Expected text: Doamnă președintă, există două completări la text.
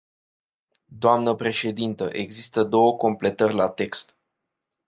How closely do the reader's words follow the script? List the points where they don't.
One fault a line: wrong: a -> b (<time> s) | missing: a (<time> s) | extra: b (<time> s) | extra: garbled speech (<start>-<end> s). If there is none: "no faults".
no faults